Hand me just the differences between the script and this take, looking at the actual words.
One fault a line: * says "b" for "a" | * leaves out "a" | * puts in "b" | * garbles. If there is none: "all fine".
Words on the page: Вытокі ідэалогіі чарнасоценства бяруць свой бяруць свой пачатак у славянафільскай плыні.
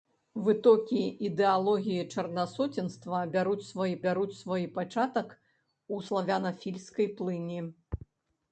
all fine